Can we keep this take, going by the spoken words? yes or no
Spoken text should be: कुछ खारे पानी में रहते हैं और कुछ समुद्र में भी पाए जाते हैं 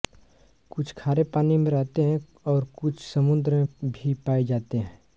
yes